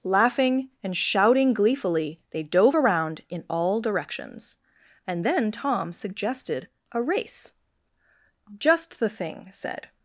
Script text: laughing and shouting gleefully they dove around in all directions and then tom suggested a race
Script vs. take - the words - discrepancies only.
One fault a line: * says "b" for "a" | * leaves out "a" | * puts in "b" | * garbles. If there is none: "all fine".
* puts in "just the thing said"